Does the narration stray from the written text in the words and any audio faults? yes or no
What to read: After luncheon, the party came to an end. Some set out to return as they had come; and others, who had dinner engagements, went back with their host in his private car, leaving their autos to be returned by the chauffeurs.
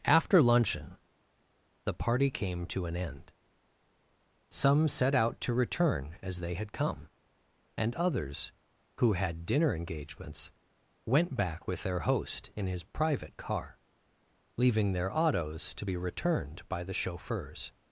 no